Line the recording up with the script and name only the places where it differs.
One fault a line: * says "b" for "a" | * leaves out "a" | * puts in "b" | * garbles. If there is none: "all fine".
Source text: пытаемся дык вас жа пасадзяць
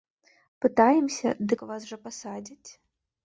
all fine